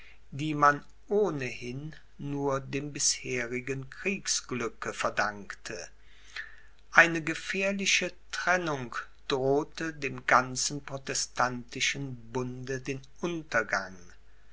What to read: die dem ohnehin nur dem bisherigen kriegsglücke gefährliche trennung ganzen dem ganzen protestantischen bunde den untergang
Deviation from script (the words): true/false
true